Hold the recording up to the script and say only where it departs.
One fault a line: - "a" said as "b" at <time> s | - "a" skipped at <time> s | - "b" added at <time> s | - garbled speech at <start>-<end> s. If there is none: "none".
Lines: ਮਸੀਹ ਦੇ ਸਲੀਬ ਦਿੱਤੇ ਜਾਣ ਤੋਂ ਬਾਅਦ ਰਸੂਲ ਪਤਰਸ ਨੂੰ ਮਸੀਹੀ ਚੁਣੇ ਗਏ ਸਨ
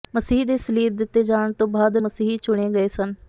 - "ਰਸੂਲ ਪਤਰਸ ਨੂੰ" skipped at 2.0 s